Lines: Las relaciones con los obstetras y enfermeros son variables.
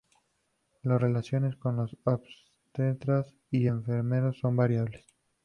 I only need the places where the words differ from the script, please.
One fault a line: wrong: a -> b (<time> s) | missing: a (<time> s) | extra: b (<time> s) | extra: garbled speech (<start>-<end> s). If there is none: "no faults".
no faults